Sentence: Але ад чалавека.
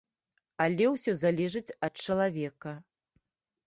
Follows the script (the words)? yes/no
no